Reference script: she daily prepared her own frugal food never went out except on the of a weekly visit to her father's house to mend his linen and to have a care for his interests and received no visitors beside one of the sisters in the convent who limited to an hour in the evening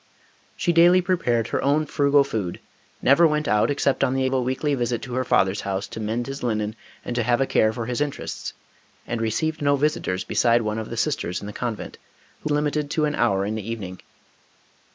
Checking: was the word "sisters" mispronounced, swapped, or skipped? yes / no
no